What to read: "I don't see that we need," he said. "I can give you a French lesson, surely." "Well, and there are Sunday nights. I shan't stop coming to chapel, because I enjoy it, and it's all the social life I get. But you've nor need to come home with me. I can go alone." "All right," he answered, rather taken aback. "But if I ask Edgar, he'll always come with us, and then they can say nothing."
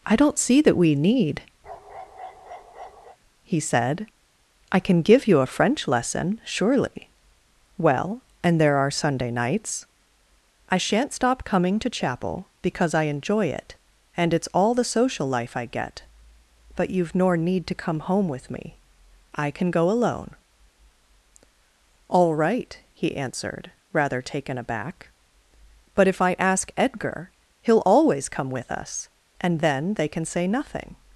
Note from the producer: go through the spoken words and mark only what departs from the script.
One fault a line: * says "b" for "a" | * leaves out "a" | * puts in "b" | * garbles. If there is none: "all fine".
all fine